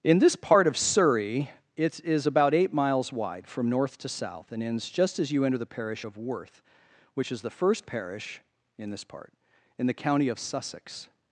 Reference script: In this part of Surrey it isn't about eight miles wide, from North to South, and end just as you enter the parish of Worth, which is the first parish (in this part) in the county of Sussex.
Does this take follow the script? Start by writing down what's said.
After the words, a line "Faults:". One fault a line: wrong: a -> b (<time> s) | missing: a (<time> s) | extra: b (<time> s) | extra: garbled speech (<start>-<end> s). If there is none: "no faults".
In this part of Surrey it is about eight miles wide, from North to South, and ends just as you enter the parish of Worth, which is the first parish (in this part) in the county of Sussex.
Faults:
wrong: isn't -> is (2.0 s)
wrong: end -> ends (4.6 s)